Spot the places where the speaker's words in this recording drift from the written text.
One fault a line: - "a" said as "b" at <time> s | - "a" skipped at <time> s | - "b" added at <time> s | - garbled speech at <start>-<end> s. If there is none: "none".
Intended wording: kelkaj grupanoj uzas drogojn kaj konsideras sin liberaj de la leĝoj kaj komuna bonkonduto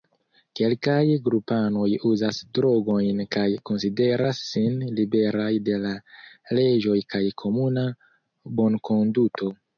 none